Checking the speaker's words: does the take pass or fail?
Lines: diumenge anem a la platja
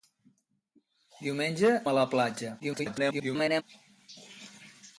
fail